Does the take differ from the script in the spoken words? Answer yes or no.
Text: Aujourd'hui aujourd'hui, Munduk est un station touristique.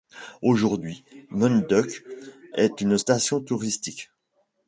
yes